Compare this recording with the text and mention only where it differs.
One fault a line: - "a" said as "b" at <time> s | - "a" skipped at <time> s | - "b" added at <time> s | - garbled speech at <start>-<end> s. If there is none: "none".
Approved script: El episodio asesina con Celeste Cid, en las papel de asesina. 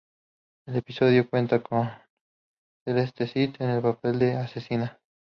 - "asesina" said as "cuenta" at 1.3 s
- "las" said as "el" at 3.7 s